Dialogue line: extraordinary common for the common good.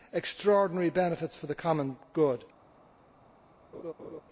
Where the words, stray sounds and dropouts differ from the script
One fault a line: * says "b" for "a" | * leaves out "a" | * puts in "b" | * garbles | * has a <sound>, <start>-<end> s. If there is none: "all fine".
* says "benefits" for "common"
* has a laugh, 3.7-4.2 s